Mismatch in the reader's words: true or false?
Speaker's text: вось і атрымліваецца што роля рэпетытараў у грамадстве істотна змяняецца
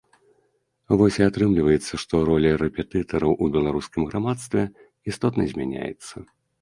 true